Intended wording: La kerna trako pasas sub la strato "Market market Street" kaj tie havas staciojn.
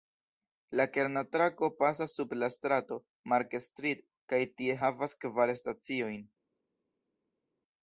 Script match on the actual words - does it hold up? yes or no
no